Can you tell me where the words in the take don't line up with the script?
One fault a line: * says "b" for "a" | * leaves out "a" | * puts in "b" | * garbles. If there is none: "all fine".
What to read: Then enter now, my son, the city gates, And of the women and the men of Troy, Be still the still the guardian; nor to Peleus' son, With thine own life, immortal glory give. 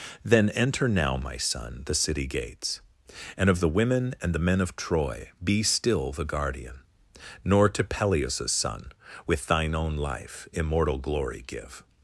* leaves out "still the"